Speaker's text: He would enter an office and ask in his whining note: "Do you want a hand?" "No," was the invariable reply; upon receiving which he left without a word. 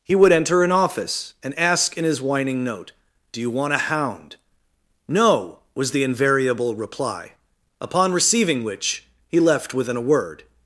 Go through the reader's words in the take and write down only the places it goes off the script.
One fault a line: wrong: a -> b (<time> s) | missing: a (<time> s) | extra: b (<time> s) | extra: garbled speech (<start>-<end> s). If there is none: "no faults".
wrong: hand -> hound (3.8 s)
wrong: without -> within (9.7 s)